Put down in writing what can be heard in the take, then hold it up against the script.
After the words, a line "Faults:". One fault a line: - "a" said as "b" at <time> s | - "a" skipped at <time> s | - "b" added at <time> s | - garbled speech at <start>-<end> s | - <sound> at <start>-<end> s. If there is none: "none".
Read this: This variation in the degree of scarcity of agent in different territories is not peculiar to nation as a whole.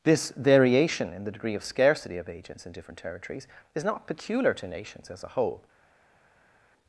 This variation in the degree of scarcity of agents in different territories is not peculiar to nations as a whole.
Faults:
- "agent" said as "agents" at 2.3 s
- "nation" said as "nations" at 4.7 s